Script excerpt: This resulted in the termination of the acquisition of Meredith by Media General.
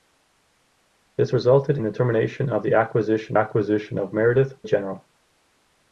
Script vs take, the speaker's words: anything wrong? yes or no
yes